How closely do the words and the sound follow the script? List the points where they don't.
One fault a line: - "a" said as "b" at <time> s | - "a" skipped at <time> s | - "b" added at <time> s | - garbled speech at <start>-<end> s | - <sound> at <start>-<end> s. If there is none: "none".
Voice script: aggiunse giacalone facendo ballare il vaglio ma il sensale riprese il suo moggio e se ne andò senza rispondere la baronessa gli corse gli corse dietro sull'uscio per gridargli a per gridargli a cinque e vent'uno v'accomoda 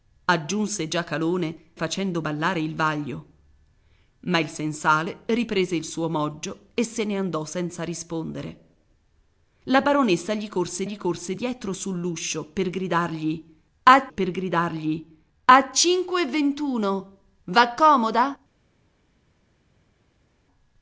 none